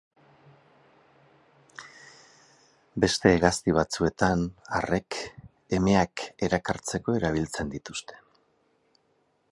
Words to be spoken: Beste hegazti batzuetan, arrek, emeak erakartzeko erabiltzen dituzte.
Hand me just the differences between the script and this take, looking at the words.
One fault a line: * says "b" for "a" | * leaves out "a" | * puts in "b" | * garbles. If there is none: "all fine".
all fine